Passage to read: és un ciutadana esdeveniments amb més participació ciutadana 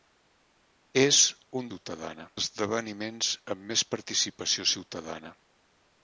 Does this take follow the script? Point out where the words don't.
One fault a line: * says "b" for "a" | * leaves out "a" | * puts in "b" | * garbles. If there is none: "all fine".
all fine